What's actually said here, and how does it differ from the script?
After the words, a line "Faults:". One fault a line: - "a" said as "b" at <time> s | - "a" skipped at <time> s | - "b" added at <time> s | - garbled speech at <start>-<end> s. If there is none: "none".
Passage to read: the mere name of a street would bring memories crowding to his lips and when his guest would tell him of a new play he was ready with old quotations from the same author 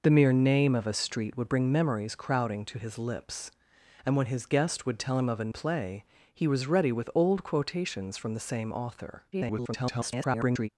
the mere name of a street would bring memories crowding to his lips and when his guest would tell him of a play he was ready with old quotations from the same author [garbled]
Faults:
- "new" skipped at 5.5 s
- garbled speech at 9.3-10.7 s